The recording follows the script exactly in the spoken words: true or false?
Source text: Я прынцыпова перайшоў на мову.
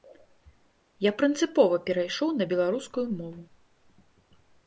false